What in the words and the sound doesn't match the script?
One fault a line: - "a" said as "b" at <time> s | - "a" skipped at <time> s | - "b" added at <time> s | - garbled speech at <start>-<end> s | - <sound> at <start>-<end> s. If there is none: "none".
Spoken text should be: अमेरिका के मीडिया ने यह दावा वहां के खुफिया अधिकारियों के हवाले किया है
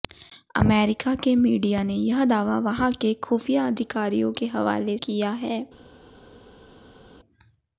none